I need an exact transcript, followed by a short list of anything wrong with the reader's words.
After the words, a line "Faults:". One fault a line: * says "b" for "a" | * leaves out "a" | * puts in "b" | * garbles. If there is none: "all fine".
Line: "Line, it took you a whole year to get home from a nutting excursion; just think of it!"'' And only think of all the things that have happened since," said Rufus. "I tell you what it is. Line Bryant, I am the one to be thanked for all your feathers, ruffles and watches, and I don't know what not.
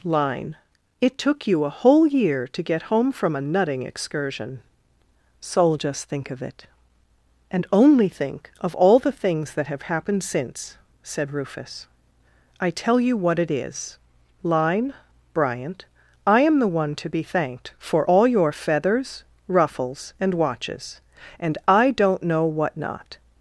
"Line, it took you a whole year to get home from a nutting excursion; soul just think of it!"'' And only think of all the things that have happened since," said Rufus. "I tell you what it is. Line Bryant, I am the one to be thanked for all your feathers, ruffles and watches, and I don't know what not.
Faults:
* puts in "soul"